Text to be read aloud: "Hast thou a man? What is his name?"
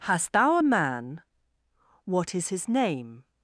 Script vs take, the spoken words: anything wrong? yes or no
no